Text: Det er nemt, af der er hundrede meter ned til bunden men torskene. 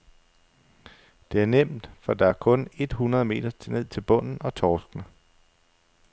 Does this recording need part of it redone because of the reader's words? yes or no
yes